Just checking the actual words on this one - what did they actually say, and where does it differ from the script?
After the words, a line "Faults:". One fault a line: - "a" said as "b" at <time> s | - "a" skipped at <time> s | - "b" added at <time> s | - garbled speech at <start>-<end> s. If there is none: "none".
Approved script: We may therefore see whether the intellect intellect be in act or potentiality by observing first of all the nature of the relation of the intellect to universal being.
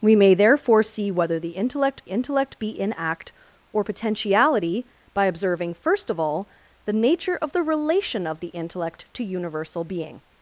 We may therefore see whether the intellect intellect be in act or potentiality by observing first of all the nature of the relation of the intellect to universal being.
Faults:
none